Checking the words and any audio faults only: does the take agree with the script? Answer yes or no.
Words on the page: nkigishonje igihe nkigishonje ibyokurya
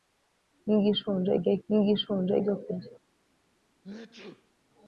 no